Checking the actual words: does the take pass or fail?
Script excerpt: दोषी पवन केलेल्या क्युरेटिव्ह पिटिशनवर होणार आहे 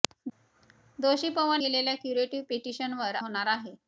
pass